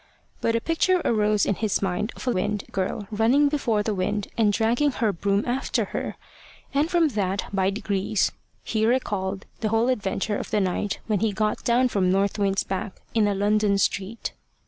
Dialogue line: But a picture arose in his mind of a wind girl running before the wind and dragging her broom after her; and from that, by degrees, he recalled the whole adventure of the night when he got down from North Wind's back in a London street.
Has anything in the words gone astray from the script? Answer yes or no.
no